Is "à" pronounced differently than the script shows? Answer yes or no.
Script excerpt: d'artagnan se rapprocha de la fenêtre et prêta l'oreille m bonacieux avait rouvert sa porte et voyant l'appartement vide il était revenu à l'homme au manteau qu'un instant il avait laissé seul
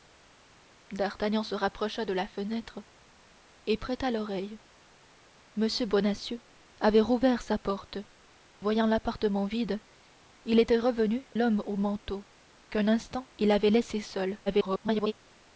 yes